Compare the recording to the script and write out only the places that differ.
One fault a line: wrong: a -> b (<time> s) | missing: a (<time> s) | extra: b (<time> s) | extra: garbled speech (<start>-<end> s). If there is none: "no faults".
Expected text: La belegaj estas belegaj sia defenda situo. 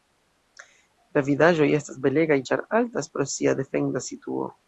wrong: belegaj -> vidaĵoj (1.3 s)
extra: ĉar altas pro (2.5 s)